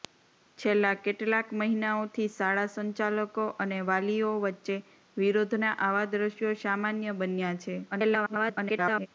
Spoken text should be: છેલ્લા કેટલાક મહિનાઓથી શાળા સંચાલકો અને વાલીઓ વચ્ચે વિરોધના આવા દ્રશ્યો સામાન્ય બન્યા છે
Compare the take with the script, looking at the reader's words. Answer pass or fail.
fail